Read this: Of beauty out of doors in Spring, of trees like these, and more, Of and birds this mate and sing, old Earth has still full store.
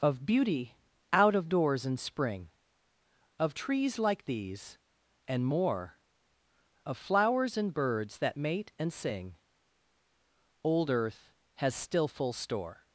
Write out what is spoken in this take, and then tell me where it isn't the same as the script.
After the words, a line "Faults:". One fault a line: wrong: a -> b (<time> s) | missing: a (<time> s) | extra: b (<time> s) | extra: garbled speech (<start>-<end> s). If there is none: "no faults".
Of beauty out of doors in Spring, of trees like these, and more, Of flowers and birds that mate and sing, old Earth has still full store.
Faults:
extra: flowers (7.0 s)
wrong: this -> that (8.2 s)